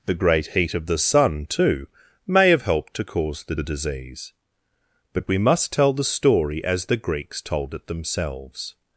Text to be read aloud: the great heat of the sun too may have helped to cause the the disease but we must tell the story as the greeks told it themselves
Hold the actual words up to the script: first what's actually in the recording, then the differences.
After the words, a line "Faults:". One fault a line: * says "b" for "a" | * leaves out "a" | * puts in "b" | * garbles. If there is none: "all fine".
the great heat of the sun too may have helped to cause the the disease but we must tell the story as the greeks told it themselves
Faults:
all fine